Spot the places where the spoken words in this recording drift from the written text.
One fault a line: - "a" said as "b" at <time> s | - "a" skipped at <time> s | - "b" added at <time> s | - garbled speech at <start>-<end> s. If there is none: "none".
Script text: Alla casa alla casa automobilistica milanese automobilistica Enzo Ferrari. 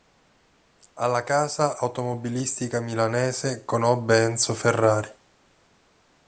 - "alla casa" skipped at 1.8 s
- "automobilistica" said as "conobbe" at 3.6 s